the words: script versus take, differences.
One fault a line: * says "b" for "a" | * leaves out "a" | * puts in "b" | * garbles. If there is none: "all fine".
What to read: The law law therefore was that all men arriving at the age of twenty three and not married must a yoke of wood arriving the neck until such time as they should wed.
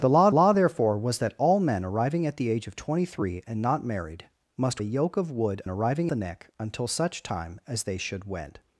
all fine